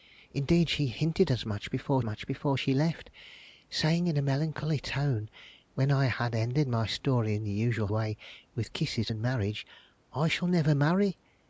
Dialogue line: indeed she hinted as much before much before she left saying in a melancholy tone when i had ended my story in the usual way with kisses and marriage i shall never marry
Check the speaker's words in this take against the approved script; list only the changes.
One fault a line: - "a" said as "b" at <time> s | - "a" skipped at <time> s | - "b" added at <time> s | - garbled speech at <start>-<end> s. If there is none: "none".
none